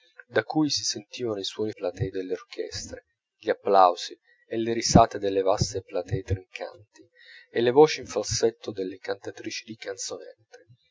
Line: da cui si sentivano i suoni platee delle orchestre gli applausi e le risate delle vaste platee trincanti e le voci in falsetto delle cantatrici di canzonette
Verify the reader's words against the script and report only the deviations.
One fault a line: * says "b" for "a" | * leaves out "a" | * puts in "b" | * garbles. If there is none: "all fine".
all fine